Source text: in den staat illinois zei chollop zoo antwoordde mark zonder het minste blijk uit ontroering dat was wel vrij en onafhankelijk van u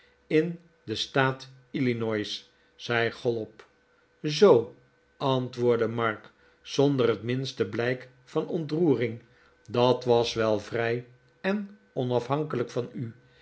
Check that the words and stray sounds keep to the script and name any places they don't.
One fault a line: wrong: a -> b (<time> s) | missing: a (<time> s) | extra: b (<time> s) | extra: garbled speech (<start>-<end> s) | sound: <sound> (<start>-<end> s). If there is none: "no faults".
wrong: uit -> van (8.2 s)